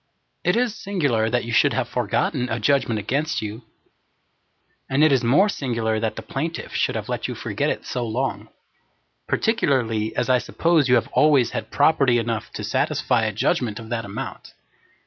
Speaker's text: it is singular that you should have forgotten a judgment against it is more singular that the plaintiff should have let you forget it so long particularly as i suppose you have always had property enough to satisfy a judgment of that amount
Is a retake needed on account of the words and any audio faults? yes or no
yes